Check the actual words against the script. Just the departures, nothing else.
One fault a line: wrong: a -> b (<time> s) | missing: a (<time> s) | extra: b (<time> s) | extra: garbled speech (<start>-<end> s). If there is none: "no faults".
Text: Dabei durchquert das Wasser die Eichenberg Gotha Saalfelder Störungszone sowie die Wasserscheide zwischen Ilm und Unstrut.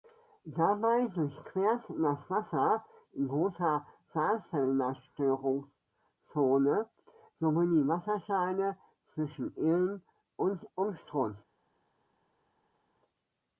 missing: die Eichenberg (2.8 s)